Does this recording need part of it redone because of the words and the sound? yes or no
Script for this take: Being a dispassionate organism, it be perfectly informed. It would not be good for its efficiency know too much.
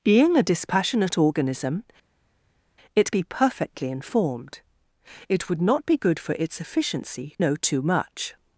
no